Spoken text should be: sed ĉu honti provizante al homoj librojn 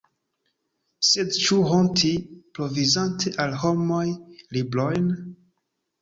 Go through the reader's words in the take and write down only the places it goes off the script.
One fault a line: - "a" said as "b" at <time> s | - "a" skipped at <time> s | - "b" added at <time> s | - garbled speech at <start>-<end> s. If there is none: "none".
none